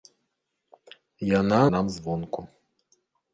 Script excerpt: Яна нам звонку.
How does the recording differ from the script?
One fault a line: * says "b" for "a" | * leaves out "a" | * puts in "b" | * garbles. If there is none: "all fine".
all fine